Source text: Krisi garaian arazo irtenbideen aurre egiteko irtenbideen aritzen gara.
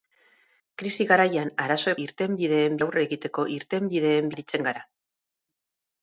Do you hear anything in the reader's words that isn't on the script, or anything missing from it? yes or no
no